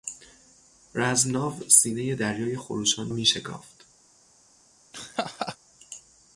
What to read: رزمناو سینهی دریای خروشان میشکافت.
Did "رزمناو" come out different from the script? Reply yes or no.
no